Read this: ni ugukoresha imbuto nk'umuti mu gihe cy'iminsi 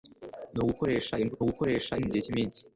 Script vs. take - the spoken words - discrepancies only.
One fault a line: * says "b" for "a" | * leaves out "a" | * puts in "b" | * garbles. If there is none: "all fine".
* says "ugukoresha" for "nk'umuti"